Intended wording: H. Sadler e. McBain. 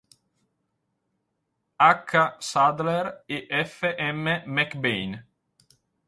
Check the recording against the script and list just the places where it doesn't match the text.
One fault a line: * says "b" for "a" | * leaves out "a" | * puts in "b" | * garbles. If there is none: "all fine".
* puts in "F M"